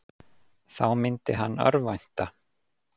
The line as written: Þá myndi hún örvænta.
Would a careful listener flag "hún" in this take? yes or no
yes